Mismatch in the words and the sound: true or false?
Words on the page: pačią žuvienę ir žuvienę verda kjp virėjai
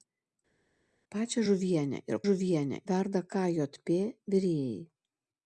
false